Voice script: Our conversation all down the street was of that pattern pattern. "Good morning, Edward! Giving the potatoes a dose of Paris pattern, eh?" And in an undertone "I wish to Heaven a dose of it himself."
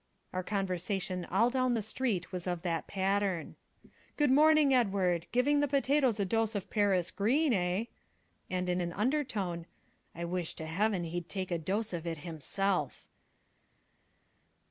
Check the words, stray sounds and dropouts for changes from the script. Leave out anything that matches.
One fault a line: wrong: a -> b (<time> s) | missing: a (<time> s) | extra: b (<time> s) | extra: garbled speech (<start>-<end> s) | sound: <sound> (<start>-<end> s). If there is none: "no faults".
missing: pattern (3.6 s)
wrong: pattern -> green (7.1 s)
extra: he'd take (11.0 s)